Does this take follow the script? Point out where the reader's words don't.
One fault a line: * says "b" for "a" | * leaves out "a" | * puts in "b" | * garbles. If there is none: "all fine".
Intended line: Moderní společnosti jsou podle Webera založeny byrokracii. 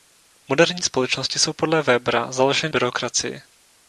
all fine